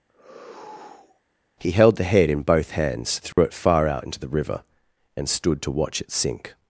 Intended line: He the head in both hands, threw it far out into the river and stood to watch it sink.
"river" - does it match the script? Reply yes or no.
yes